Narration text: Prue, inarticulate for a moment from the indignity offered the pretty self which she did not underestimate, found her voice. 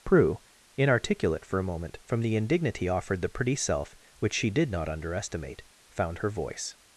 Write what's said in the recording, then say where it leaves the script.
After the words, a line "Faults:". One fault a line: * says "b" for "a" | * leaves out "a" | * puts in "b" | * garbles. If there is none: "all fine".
Prue, inarticulate for a moment from the indignity offered the pretty self which she did not underestimate, found her voice.
Faults:
all fine